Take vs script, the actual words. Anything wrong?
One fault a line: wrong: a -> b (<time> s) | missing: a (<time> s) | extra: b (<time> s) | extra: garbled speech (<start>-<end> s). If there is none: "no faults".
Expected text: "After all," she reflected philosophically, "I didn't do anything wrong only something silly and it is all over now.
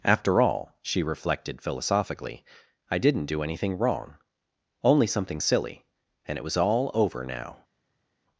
wrong: is -> was (6.4 s)